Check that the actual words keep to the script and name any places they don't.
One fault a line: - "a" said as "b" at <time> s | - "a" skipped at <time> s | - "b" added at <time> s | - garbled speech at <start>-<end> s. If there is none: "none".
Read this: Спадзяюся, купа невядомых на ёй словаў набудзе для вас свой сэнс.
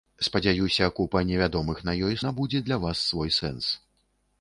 - "словаў" skipped at 2.2 s